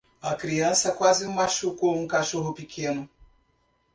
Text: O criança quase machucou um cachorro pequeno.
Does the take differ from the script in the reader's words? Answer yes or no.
yes